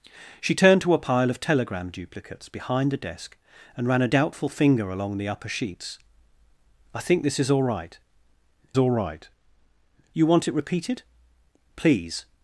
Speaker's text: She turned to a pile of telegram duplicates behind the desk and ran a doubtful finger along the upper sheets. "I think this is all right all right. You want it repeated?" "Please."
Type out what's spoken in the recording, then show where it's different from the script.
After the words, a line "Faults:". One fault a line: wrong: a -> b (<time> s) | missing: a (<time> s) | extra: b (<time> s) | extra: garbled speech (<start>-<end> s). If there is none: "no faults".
She turned to a pile of telegram duplicates behind the desk and ran a doubtful finger along the upper sheets. "I think this is all right all right. You want it repeated?" "Please."
Faults:
no faults